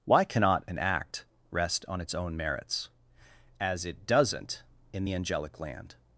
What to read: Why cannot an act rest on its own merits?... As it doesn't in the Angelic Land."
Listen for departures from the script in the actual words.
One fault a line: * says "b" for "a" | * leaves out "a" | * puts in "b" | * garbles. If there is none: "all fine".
all fine